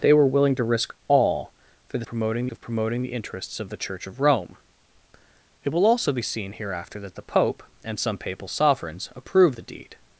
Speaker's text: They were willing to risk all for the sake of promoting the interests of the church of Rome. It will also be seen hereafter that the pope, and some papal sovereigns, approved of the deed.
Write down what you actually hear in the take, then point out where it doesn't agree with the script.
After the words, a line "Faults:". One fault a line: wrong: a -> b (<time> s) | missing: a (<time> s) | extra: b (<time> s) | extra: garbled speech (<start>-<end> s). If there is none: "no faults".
They were willing to risk all for the promoting of promoting the interests of the church of Rome. It will also be seen hereafter that the pope, and some papal sovereigns, approved the deed.
Faults:
wrong: sake -> promoting (2.0 s)
missing: of (9.6 s)